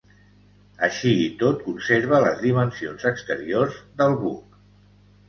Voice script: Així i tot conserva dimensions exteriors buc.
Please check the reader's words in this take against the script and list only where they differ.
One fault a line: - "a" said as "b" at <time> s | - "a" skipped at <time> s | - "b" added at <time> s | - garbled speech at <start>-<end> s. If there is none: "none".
- "les" added at 2.3 s
- "del" added at 4.0 s